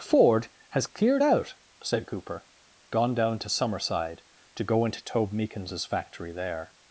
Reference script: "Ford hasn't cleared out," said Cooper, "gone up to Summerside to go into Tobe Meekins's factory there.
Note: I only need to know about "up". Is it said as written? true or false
false